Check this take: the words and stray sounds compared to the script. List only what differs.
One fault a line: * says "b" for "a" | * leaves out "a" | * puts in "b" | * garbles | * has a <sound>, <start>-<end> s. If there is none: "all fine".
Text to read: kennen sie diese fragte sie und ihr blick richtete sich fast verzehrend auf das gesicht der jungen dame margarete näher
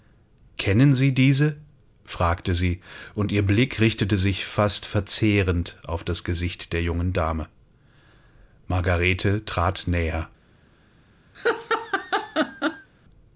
* puts in "trat"
* has a laugh, 11.3-12.9 s